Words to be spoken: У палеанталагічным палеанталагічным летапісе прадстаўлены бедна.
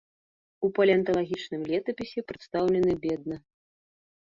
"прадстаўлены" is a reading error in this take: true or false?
false